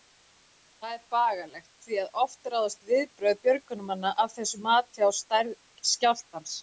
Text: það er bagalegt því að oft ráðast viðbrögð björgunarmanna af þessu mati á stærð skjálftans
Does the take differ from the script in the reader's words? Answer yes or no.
no